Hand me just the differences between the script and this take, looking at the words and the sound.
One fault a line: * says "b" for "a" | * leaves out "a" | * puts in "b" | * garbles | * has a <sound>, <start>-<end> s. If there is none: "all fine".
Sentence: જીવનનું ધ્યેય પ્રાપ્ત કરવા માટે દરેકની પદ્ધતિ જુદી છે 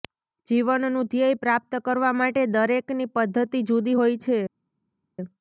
* puts in "હોય"